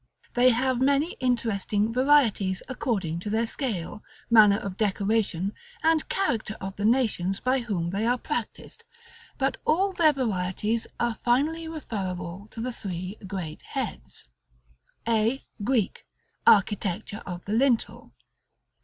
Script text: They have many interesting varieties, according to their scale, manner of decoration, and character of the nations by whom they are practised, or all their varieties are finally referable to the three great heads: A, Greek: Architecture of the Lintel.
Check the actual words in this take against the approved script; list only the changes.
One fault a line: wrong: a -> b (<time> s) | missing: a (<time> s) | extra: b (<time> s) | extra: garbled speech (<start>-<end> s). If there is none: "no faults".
wrong: or -> but (9.4 s)